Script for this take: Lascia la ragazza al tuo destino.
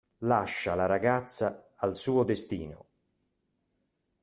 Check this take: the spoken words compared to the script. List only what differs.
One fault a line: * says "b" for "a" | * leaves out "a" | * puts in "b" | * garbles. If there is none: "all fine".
* says "suo" for "tuo"